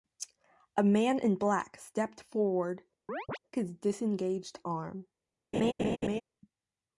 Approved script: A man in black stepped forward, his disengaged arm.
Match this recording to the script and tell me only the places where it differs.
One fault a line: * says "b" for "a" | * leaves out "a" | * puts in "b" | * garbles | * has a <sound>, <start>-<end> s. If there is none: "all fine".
* has a chirp, 3.1-3.4 s
* has a laugh, 5.5-6.2 s